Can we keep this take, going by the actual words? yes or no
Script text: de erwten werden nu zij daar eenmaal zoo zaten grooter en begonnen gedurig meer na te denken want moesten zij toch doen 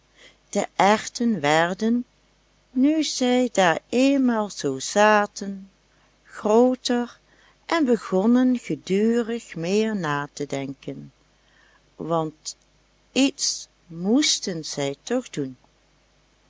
no